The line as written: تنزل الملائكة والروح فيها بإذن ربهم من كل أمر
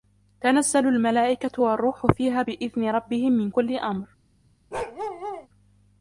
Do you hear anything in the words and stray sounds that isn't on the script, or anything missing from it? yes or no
yes